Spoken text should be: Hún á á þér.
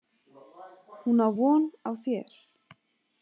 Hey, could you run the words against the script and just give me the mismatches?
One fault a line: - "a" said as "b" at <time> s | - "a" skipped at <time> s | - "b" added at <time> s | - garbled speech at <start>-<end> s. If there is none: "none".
- "von" added at 1.4 s